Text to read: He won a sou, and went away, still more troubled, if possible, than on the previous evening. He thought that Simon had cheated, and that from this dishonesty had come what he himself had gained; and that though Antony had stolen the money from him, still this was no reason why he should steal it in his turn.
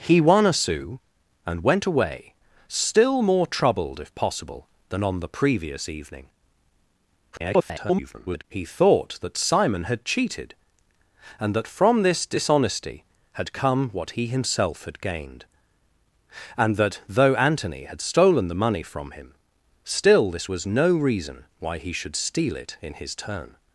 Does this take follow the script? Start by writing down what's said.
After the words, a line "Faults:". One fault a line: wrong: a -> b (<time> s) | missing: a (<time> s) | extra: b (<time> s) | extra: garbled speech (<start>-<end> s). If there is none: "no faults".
He won a sou, and went away, still more troubled, if possible, than on the previous evening. [garbled] He thought that Simon had cheated, and that from this dishonesty had come what he himself had gained; and that though Antony had stolen the money from him, still this was no reason why he should steal it in his turn.
Faults:
extra: garbled speech (7.3-8.4 s)